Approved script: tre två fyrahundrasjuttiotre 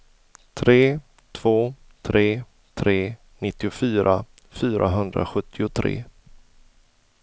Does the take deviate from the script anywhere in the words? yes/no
yes